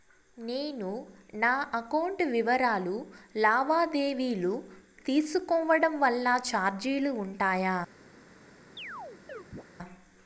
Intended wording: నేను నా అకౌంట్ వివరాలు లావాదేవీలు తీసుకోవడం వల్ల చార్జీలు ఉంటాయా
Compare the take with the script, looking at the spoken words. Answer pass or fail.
pass